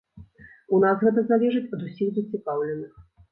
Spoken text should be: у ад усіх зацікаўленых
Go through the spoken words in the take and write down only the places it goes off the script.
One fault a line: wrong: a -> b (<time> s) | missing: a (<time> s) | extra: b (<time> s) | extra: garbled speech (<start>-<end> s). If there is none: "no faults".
extra: нас гэта залежыць (0.8 s)